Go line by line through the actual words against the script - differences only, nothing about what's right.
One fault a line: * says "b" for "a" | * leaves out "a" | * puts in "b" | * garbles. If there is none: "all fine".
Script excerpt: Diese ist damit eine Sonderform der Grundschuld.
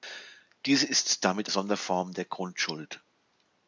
* leaves out "eine"